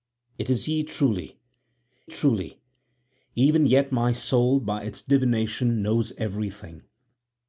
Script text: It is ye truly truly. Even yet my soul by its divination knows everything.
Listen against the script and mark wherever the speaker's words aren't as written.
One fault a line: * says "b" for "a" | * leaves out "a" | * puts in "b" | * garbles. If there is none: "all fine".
all fine